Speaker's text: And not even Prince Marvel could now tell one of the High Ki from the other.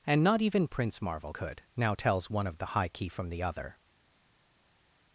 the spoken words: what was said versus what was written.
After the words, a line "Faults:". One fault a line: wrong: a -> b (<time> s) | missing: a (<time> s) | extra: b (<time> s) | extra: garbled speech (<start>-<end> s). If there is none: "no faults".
And not even Prince Marvel could now tells one of the High Ki from the other.
Faults:
wrong: tell -> tells (1.9 s)